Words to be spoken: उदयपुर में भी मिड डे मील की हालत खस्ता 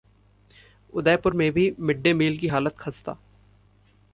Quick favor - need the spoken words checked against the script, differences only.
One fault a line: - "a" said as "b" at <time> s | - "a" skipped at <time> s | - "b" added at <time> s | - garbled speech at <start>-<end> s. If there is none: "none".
none